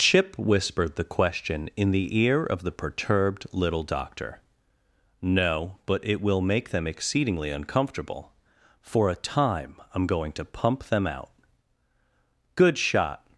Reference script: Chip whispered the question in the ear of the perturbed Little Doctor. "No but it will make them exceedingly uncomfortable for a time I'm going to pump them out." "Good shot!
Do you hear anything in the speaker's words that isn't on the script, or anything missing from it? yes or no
no